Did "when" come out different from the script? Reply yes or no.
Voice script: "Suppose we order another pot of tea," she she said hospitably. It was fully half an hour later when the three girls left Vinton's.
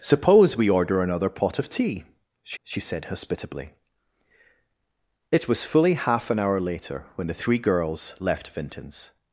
no